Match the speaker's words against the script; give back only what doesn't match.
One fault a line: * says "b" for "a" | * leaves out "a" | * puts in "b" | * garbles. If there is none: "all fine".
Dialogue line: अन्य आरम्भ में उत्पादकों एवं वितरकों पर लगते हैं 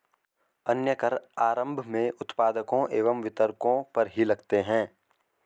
* puts in "कर"
* puts in "ही"